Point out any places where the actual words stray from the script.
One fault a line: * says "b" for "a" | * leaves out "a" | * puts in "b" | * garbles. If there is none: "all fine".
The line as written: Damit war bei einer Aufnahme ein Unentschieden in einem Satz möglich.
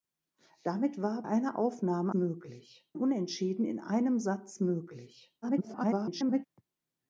* leaves out "bei"
* says "möglich" for "ein"
* garbles